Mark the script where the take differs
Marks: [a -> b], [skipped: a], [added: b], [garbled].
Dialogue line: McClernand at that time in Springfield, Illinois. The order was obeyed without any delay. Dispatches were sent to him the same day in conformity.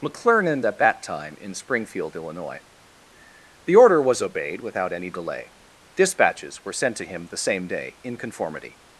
McClernand at that time in Springfield, Illinois. The order was obeyed without any delay. Dispatches were sent to him the same day in conformity.